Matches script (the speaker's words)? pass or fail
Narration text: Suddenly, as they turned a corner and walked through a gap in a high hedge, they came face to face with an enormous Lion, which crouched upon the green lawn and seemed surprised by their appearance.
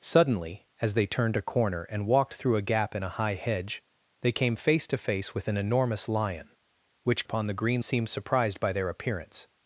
fail